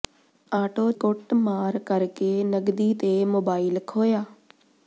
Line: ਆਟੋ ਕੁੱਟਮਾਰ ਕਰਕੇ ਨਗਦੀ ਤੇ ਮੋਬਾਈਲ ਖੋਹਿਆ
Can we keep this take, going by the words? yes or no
yes